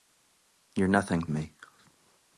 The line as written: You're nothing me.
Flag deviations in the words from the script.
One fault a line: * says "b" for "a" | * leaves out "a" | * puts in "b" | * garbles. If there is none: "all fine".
all fine